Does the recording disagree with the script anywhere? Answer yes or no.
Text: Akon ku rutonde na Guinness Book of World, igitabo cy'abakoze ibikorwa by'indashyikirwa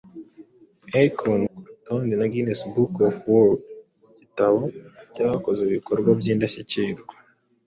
no